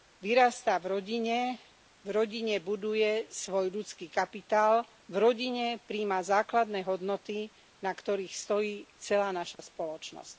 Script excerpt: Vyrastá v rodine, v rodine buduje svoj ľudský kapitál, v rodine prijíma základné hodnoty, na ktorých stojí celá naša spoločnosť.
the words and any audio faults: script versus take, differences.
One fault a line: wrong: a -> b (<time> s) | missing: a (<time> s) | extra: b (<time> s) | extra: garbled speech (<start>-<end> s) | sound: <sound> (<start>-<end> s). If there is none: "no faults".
sound: dropout (9.5-9.6 s)